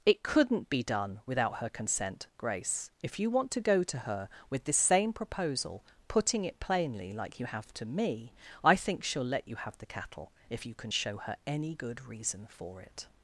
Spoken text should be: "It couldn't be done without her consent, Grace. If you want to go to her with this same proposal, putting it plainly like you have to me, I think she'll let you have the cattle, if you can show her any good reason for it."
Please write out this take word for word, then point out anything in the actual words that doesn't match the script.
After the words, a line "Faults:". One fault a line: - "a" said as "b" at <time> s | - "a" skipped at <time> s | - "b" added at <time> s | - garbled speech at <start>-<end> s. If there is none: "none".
"It couldn't be done without her consent, Grace. If you want to go to her with this same proposal, putting it plainly like you have to me, I think she'll let you have the cattle, if you can show her any good reason for it."
Faults:
none